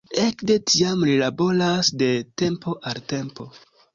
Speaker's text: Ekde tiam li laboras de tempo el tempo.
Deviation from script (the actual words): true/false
true